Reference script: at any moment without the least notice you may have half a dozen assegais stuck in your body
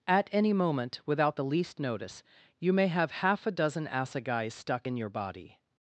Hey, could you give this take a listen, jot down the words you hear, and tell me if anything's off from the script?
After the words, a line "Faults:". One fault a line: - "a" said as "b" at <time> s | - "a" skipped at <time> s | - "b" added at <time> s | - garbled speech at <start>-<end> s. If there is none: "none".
at any moment without the least notice you may have half a dozen assegais stuck in your body
Faults:
none